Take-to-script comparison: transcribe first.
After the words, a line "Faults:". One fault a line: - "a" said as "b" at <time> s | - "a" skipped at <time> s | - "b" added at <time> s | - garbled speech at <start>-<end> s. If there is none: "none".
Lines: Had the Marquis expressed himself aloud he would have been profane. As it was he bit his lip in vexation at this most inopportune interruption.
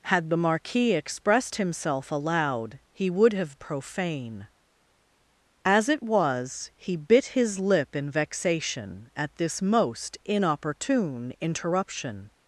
Had the Marquis expressed himself aloud he would have profane. As it was he bit his lip in vexation at this most inopportune interruption.
Faults:
- "been" skipped at 3.6 s